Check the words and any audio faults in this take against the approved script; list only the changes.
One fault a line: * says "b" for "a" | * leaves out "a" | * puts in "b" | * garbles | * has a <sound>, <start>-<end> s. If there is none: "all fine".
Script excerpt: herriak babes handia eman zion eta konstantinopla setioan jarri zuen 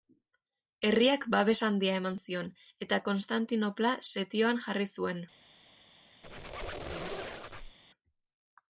* has a squeak, 6.2-7.8 s